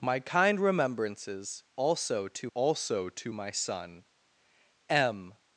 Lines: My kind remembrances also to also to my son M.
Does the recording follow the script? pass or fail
pass